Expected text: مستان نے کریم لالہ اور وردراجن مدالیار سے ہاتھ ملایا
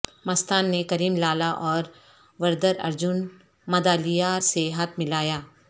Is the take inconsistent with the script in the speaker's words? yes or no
no